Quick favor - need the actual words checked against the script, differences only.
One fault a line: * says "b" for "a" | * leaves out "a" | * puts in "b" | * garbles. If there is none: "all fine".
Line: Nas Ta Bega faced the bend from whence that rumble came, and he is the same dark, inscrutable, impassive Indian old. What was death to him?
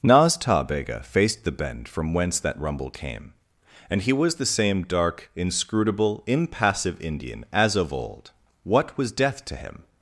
* says "was" for "is"
* puts in "as of"